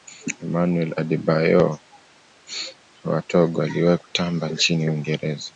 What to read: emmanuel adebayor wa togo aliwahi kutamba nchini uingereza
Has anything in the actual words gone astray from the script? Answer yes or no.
no